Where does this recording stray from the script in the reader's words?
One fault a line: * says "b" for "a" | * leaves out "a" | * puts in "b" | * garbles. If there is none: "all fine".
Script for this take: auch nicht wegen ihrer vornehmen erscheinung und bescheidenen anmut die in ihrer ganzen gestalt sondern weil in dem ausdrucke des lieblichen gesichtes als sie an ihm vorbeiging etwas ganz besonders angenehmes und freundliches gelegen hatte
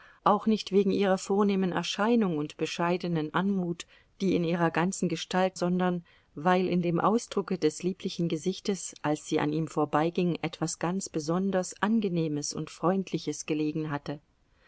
all fine